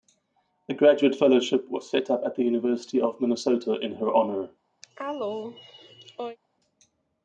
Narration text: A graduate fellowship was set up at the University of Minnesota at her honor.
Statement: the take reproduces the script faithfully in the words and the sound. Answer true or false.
false